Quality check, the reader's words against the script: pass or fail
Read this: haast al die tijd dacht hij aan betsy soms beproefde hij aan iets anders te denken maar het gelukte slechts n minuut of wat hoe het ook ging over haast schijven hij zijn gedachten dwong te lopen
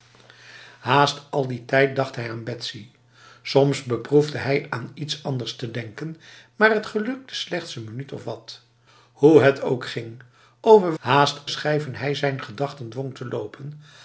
pass